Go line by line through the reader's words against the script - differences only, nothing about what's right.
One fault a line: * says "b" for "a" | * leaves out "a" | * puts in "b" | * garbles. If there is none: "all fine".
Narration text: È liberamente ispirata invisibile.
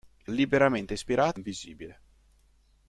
all fine